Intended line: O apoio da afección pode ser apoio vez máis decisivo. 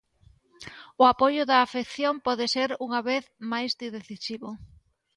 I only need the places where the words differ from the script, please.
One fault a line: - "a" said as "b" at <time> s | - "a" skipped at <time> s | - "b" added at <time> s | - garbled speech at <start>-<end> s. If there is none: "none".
- "apoio" said as "unha" at 2.9 s